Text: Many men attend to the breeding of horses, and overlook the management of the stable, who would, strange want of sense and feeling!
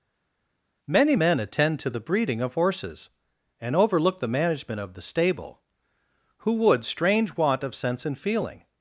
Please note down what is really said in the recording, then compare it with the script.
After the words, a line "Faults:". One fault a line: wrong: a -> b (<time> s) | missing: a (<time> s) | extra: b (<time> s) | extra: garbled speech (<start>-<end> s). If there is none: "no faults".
Many men attend to the breeding of horses, and overlook the management of the stable, who would, strange want of sense and feeling!
Faults:
no faults